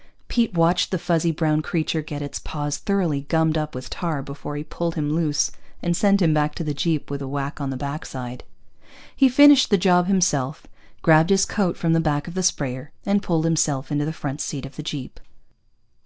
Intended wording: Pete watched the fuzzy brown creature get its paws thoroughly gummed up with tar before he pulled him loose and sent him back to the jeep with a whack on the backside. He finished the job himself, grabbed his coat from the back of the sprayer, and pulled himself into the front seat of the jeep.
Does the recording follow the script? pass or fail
pass